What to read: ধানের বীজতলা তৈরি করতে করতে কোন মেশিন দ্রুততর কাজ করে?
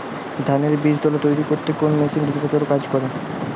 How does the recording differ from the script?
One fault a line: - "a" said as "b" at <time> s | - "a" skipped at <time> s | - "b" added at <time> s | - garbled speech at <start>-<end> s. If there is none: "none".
- "করতে" skipped at 1.7 s